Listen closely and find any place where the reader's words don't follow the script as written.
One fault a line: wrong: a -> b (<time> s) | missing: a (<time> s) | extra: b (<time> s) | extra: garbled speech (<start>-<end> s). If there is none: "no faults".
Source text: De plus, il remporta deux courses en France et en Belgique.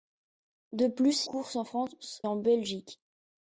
missing: il remporta deux (1.3 s)
missing: et (2.2 s)